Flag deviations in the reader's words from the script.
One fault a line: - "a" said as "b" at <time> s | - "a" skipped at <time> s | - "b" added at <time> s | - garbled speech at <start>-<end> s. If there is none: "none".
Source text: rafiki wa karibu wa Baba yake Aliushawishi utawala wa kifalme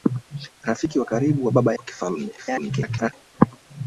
- "yake Aliushawishi utawala" skipped at 1.8 s
- garbled speech at 2.4-3.1 s